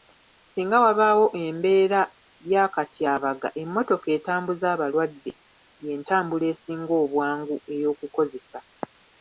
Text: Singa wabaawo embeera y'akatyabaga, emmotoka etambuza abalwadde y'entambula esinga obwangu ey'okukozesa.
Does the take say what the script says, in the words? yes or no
yes